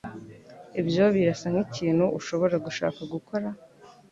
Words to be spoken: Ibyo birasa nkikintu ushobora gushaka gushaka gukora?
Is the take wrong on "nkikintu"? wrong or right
right